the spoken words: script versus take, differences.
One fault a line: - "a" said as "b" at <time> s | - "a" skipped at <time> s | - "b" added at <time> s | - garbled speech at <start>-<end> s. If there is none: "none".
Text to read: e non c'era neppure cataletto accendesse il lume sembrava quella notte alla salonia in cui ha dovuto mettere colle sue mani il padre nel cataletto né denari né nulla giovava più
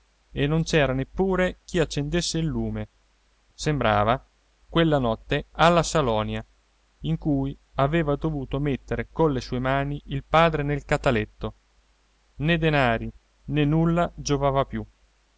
- "cataletto" said as "chi" at 1.6 s
- "ha" said as "aveva" at 7.8 s